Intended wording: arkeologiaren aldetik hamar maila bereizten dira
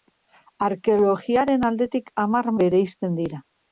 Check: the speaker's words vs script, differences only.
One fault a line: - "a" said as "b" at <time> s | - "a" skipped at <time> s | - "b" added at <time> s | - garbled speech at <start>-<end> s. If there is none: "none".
- "maila" skipped at 2.5 s